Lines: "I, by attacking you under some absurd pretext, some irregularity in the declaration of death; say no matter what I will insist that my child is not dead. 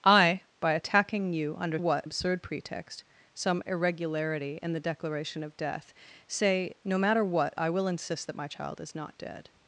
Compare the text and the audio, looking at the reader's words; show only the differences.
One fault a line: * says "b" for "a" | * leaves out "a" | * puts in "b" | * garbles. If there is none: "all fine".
* says "what" for "some"